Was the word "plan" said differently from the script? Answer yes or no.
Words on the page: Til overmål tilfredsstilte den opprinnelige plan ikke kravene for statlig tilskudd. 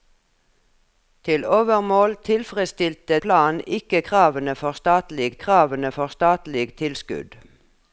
yes